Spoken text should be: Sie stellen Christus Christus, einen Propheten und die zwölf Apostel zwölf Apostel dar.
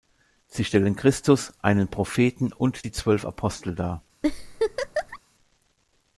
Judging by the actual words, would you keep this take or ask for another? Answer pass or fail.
fail